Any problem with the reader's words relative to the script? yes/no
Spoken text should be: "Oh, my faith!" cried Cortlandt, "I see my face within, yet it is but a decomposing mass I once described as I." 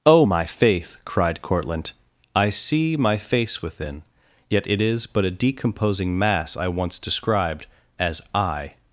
no